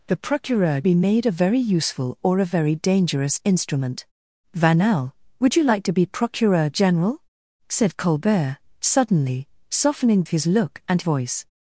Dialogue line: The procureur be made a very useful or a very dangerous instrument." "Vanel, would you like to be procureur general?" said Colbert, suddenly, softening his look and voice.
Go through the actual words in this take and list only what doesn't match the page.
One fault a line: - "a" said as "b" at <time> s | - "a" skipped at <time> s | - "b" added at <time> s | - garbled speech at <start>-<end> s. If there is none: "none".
none